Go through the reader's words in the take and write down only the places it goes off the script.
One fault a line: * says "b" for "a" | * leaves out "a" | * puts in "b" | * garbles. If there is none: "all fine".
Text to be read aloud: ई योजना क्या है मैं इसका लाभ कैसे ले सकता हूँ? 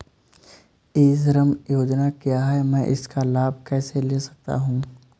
* puts in "श्रम"